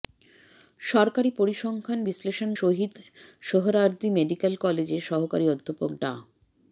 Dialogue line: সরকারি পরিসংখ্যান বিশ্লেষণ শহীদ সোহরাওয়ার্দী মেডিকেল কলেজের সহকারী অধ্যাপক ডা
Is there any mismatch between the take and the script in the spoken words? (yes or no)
no